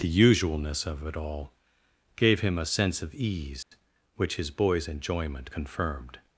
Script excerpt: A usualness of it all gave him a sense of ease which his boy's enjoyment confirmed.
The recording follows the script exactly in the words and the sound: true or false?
false